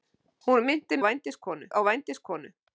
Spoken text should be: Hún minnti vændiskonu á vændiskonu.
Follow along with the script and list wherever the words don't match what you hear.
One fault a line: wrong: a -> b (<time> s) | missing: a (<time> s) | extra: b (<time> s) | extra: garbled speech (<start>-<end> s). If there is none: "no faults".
no faults